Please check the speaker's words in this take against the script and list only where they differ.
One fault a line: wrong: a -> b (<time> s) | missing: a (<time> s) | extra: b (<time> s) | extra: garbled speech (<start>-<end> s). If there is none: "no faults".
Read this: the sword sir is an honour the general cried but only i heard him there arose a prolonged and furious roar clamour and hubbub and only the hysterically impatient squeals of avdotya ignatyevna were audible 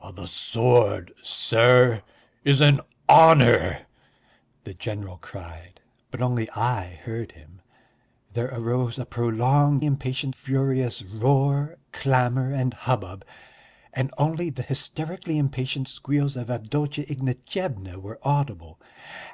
wrong: and -> impatient (9.8 s)